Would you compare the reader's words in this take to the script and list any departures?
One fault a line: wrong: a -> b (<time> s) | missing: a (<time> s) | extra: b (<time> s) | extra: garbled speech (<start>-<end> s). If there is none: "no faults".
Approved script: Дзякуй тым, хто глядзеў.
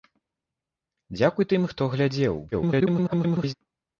extra: garbled speech (2.5-3.5 s)